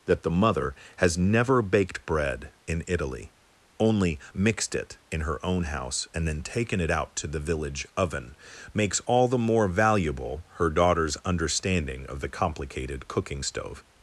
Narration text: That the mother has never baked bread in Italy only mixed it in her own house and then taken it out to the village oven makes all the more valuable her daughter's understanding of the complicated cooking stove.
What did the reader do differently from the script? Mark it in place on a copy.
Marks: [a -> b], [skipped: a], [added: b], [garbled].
That the mother has never baked bread in Italy only mixed it in her own house and then taken it out to the village oven makes all the more valuable her daughter's understanding of the complicated cooking stove.